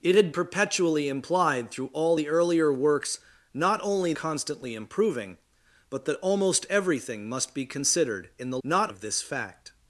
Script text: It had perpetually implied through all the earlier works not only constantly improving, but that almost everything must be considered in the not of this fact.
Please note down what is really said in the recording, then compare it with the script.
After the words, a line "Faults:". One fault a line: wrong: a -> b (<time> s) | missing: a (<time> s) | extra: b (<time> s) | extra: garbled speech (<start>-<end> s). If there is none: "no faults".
It had perpetually implied through all the earlier works not only constantly improving, but that almost everything must be considered in the not of this fact.
Faults:
no faults